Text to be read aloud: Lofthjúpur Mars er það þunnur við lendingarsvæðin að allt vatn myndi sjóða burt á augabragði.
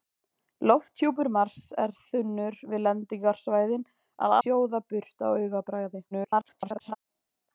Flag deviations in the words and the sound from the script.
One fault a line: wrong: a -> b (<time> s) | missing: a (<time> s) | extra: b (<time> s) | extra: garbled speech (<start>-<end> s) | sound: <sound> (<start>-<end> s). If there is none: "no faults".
missing: það (1.9 s)
missing: allt vatn myndi (4.4 s)
extra: garbled speech (6.1-7.0 s)